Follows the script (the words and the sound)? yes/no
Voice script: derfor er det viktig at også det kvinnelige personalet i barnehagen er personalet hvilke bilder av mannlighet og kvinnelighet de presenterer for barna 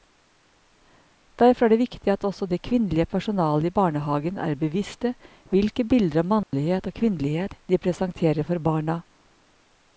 no